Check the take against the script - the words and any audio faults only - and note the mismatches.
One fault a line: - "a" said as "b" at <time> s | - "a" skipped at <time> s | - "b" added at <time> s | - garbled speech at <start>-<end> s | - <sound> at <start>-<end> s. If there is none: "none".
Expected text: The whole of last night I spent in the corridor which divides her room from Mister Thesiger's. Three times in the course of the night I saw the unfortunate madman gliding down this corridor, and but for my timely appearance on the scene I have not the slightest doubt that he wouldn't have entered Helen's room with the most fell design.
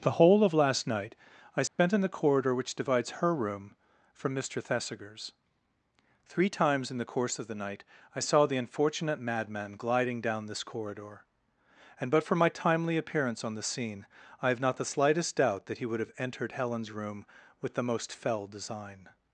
- dropout at 1.7-1.8 s
- "wouldn't" said as "would" at 15.9 s